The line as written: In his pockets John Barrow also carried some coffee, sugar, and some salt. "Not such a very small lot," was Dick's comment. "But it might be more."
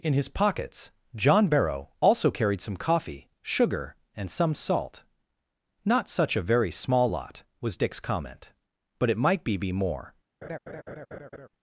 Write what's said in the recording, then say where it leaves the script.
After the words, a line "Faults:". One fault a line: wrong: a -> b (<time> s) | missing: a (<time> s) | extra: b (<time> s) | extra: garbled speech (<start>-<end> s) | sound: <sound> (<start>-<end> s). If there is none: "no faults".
In his pockets John Barrow also carried some coffee, sugar, and some salt. "Not such a very small lot," was Dick's comment. "But it might be be more."
Faults:
extra: be (9.6 s)
sound: laugh (10.4-11.5 s)